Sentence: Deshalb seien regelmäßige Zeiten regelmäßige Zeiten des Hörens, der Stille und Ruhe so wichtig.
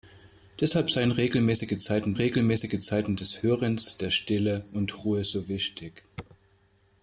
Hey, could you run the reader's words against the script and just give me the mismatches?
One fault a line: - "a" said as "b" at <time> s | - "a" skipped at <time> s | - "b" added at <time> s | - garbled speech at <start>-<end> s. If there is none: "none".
none